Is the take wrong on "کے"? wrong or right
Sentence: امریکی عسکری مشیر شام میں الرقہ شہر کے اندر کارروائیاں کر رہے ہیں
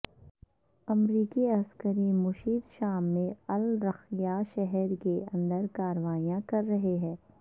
right